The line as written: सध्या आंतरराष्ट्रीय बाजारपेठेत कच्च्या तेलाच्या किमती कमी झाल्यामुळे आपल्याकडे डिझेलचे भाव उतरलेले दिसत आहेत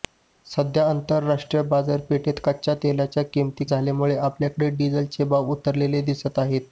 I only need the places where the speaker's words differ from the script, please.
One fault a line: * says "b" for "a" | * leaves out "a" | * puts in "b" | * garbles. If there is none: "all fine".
* leaves out "कमी"